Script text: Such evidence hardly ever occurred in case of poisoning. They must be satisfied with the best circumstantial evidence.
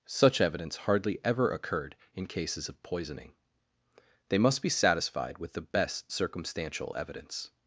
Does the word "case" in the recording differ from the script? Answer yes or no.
yes